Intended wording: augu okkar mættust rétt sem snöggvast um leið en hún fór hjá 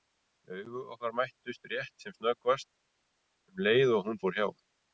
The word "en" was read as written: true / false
false